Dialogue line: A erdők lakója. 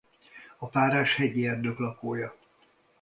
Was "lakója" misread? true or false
false